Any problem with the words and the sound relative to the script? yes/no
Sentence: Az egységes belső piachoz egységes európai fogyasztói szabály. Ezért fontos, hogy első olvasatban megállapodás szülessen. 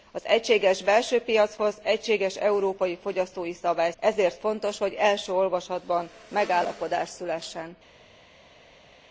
no